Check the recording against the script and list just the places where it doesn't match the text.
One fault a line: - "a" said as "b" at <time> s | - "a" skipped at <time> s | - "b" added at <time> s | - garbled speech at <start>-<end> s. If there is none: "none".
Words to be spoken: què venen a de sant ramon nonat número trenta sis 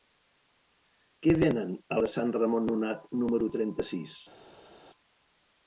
none